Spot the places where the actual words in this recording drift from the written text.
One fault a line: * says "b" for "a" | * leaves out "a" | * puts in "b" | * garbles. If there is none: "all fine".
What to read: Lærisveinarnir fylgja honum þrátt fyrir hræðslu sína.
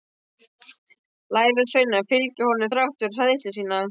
all fine